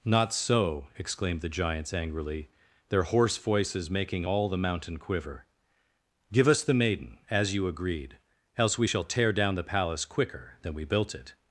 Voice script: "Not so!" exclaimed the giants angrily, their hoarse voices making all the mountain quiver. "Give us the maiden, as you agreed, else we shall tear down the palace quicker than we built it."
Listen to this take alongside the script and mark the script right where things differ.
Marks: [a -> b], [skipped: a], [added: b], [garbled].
"Not so!" exclaimed the giants angrily, their hoarse voices making all the mountain quiver. "Give us the maiden, as you agreed, else we shall tear down the palace quicker than we built it."